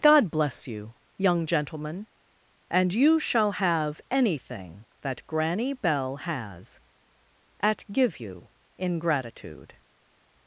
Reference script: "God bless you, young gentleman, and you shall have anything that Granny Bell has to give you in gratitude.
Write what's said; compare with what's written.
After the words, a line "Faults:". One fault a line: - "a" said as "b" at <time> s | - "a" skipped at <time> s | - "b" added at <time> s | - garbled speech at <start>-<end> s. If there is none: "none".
"God bless you, young gentleman, and you shall have anything that Granny Bell has at give you in gratitude.
Faults:
- "to" said as "at" at 7.6 s